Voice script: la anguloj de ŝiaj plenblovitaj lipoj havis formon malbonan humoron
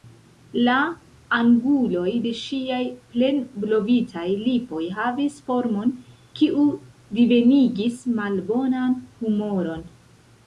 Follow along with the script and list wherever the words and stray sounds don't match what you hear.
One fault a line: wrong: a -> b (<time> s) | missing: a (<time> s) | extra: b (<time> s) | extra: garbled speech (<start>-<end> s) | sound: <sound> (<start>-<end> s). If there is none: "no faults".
extra: kiu divenigis (6.4 s)